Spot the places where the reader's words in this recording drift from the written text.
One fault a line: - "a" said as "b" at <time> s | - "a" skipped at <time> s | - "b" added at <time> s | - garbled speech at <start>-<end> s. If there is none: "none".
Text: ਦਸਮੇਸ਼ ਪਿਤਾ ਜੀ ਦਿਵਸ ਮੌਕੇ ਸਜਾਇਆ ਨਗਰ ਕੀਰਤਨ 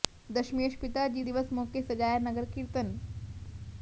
none